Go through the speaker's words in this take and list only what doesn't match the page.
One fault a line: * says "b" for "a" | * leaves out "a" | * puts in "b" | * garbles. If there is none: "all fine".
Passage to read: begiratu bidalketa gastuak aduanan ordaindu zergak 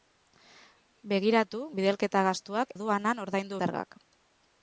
all fine